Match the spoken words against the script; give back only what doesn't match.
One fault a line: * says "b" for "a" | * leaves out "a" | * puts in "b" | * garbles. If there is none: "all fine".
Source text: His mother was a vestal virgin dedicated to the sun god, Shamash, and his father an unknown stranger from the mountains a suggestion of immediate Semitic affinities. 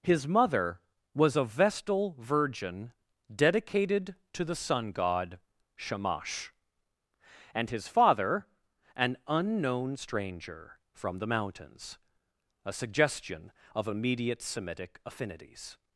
all fine